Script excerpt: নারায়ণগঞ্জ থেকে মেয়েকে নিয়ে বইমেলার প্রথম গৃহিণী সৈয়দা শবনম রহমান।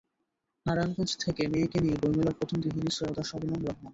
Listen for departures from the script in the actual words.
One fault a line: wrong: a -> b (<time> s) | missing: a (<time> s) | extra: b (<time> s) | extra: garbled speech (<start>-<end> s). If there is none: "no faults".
no faults